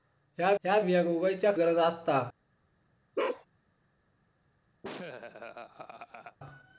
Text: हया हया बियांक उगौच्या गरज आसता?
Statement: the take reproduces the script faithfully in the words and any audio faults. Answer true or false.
false